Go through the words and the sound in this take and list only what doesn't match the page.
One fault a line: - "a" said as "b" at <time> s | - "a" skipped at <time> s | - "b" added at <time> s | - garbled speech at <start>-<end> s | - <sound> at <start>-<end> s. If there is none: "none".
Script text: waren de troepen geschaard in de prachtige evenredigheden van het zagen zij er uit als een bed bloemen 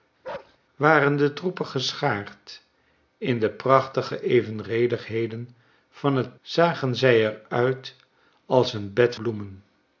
- bark at 0.2-0.6 s